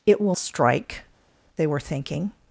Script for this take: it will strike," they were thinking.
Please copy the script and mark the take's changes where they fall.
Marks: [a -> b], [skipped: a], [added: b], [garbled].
it will strike," they were thinking.